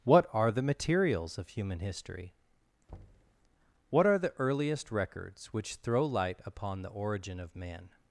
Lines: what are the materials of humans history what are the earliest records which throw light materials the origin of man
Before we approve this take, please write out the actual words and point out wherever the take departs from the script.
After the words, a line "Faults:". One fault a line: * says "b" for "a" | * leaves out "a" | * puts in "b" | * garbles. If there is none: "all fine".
what are the materials of human history what are the earliest records which throw light upon the origin of man
Faults:
* says "human" for "humans"
* says "upon" for "materials"